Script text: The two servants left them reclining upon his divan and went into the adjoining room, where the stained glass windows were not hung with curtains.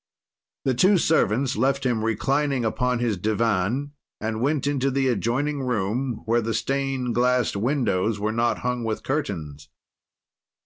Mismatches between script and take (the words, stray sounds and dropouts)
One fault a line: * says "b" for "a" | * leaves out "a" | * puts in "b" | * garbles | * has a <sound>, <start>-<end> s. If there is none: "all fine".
* says "him" for "them"